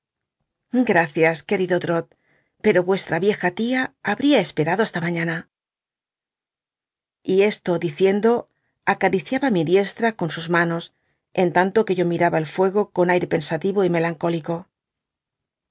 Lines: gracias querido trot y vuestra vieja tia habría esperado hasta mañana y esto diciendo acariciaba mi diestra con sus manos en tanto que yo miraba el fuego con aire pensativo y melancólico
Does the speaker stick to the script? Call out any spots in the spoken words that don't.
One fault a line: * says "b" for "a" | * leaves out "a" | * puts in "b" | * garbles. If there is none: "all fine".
* says "pero" for "y"